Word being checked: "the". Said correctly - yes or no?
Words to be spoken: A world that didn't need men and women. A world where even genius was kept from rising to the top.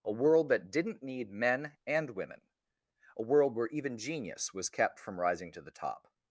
yes